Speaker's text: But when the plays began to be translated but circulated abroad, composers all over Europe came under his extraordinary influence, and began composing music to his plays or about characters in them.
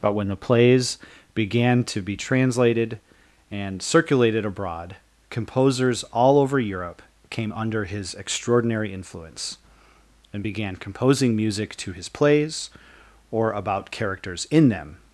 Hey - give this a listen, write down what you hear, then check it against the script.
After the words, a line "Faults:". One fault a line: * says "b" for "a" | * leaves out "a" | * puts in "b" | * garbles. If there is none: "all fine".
But when the plays began to be translated and circulated abroad, composers all over Europe came under his extraordinary influence, and began composing music to his plays or about characters in them.
Faults:
* says "and" for "but"